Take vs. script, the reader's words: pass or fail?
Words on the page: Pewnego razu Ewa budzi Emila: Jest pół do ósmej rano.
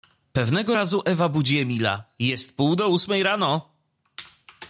pass